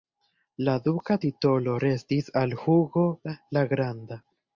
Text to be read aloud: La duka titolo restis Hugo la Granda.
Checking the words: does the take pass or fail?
fail